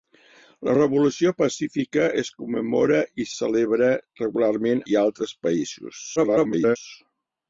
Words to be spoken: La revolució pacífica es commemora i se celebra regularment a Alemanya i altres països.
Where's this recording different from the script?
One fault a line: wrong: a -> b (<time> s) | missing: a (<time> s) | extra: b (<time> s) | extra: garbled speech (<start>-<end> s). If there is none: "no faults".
missing: se (3.3 s)
missing: a Alemanya (4.9 s)
extra: garbled speech (6.2-6.8 s)